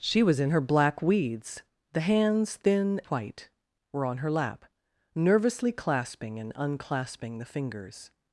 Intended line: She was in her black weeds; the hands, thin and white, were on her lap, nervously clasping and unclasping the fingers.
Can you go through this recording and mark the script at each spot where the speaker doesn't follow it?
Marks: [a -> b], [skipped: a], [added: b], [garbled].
She was in her black weeds; the hands, thin [skipped: and] white, were on her lap, nervously clasping and unclasping the fingers.